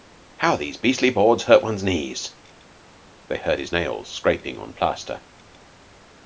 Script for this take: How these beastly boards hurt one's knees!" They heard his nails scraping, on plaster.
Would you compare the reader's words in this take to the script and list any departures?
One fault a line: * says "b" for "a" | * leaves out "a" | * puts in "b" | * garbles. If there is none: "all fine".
all fine